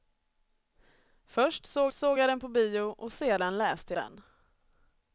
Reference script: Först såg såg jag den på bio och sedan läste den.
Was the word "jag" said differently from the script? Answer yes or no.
no